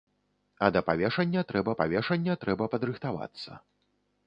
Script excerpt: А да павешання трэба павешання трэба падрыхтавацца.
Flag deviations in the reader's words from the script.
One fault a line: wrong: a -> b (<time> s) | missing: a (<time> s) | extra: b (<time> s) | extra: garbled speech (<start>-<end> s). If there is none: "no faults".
no faults